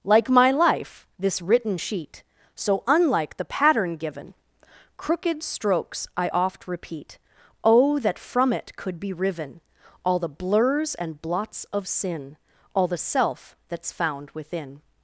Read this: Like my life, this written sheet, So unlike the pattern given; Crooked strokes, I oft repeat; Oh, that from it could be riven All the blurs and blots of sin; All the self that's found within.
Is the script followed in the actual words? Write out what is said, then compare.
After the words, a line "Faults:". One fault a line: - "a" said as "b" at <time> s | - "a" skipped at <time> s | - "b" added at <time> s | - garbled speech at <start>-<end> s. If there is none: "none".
Like my life, this written sheet, So unlike the pattern given; Crooked strokes, I oft repeat; Oh, that from it could be riven All the blurs and blots of sin; All the self that's found within.
Faults:
none